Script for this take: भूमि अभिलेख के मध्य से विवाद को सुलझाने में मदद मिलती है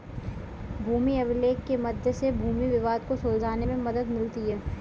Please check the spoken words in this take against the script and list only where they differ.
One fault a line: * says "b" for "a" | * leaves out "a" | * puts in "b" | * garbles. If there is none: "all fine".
* puts in "भूमि"